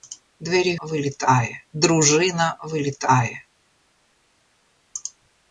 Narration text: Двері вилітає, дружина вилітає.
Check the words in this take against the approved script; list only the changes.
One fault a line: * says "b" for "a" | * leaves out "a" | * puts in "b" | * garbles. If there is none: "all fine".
all fine